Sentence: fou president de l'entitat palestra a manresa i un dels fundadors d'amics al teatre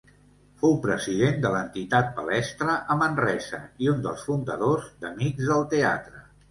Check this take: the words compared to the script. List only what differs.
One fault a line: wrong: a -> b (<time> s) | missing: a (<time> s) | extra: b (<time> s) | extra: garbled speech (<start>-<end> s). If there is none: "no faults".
wrong: al -> del (5.5 s)